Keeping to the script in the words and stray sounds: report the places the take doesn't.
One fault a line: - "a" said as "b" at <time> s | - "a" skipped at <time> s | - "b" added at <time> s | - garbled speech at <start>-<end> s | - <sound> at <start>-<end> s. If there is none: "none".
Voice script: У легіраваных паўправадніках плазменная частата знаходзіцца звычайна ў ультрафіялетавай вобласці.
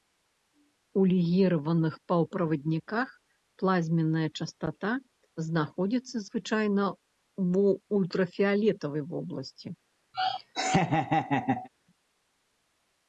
- laugh at 10.1-11.7 s